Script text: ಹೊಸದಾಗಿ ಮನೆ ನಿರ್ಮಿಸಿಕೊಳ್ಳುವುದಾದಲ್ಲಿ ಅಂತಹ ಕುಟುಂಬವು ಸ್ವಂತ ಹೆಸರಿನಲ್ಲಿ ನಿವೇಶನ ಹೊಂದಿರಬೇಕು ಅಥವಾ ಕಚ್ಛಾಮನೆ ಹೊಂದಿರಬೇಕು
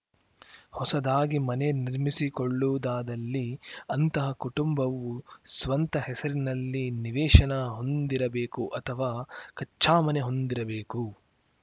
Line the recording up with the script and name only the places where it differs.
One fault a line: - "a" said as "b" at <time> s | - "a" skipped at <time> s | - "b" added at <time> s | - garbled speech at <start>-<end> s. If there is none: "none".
none